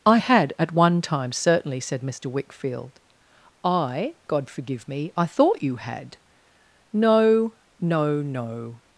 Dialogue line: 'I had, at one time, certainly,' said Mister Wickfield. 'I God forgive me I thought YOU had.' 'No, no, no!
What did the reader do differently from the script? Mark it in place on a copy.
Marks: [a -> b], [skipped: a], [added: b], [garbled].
'I had, at one time, certainly,' said Mister Wickfield. 'I God forgive me I thought YOU had.' 'No, no, no!